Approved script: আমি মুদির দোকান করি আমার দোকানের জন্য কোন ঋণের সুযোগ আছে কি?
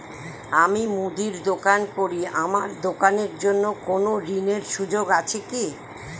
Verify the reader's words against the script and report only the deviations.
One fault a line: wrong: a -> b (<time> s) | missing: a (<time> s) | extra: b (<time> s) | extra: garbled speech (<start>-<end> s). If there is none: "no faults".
no faults